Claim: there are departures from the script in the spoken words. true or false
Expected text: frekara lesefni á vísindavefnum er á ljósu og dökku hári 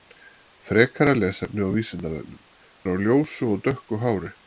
false